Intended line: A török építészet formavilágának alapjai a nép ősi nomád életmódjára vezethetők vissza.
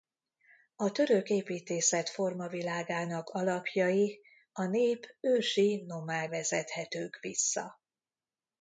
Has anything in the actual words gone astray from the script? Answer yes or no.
yes